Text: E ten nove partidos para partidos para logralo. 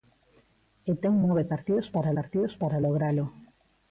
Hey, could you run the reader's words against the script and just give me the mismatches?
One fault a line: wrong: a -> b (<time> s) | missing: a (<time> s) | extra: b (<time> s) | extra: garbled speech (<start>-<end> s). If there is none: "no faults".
no faults